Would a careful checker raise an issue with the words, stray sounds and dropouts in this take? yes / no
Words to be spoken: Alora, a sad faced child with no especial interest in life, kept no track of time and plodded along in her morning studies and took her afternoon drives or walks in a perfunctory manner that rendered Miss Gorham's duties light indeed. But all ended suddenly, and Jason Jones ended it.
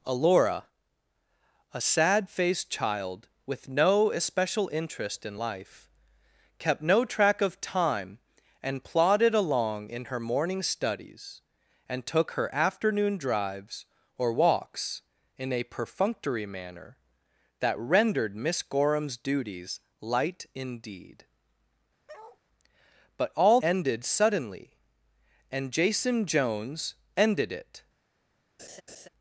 yes